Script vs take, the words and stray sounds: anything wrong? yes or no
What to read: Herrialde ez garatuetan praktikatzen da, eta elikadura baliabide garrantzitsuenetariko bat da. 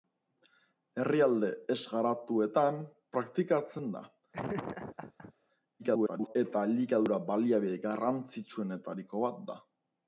yes